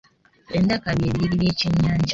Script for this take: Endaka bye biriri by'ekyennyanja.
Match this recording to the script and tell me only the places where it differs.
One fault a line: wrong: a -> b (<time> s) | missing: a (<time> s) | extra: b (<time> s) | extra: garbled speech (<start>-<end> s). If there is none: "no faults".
no faults